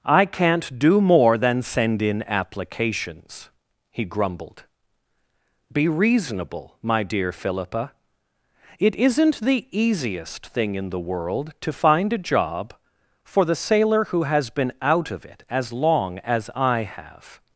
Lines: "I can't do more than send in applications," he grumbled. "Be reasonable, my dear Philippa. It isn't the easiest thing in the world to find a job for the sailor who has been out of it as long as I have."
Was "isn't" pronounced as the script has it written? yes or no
yes